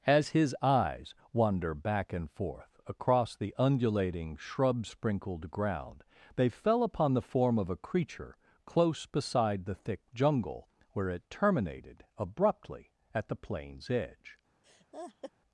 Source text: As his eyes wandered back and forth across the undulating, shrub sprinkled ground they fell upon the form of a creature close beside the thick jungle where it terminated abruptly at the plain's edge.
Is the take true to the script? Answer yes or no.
no